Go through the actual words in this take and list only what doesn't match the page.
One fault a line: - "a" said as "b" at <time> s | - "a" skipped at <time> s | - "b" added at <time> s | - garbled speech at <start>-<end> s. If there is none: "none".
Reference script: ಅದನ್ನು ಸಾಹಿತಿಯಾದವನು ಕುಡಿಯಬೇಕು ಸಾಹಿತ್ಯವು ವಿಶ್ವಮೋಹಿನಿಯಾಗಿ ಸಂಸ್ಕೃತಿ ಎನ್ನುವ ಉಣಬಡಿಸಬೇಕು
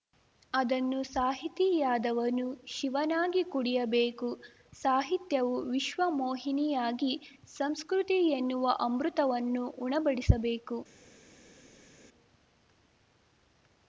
- "ಶಿವನಾಗಿ" added at 2.7 s
- "ಅಮೃತವನ್ನು" added at 8.8 s